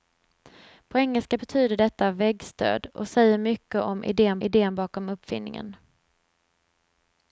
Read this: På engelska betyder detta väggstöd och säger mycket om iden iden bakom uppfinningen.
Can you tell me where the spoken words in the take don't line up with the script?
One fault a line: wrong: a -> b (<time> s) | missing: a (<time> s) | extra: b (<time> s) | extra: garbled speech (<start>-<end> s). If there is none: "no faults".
no faults